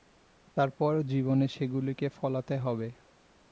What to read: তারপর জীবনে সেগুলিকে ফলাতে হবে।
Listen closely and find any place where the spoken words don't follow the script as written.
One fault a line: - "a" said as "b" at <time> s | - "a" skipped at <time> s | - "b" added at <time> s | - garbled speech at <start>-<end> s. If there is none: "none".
none